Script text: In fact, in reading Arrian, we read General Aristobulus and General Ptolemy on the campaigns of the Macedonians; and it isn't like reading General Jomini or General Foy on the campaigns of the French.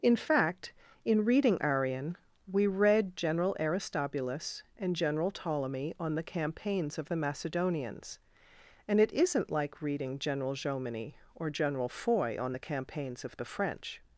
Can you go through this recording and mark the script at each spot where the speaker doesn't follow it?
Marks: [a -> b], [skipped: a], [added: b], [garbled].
In fact, in reading Arrian, we read General Aristobulus and General Ptolemy on the campaigns of the Macedonians; and it isn't like reading General Jomini or General Foy on the campaigns of the French.